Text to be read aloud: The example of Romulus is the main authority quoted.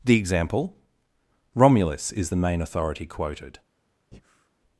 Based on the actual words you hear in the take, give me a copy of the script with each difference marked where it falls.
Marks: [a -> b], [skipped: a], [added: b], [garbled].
The example [skipped: of] Romulus is the main authority quoted.